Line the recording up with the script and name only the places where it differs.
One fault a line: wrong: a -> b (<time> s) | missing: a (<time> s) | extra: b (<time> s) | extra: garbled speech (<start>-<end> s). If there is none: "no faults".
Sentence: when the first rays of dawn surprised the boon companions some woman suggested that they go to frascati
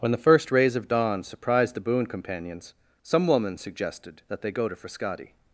no faults